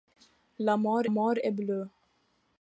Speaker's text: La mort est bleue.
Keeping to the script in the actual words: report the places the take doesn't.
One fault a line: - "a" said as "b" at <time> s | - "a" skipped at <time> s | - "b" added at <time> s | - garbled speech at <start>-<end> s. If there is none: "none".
- "mort" added at 1.1 s